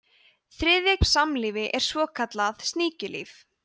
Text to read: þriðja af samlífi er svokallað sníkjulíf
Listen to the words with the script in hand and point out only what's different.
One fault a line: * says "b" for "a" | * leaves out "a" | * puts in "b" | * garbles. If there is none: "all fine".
all fine